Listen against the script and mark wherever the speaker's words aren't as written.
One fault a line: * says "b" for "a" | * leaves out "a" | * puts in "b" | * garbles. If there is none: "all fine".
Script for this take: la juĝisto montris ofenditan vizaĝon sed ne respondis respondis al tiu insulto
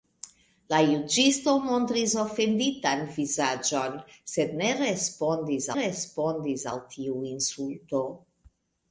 all fine